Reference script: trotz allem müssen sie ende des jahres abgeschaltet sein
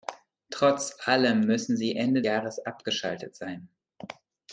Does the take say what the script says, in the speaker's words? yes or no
no